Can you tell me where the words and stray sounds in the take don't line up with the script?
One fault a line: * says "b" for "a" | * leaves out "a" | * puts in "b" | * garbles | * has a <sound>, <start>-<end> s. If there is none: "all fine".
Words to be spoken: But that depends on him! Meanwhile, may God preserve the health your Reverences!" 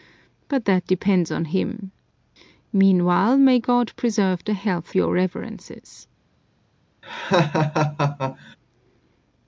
* has a laugh, 7.0-8.6 s